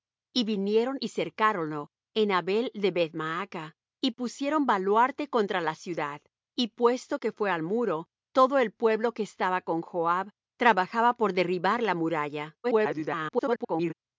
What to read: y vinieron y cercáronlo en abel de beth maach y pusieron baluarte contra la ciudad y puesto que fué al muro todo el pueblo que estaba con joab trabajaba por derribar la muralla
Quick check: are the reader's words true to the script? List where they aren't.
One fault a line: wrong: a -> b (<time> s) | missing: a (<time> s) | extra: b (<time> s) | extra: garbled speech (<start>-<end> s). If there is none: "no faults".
extra: garbled speech (12.6-13.9 s)